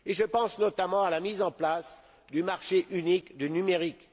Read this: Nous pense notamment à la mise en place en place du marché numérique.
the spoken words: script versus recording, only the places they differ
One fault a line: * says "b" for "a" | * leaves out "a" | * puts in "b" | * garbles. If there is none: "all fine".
* says "Je" for "Nous"
* says "du marché unique" for "en place"
* leaves out "marché"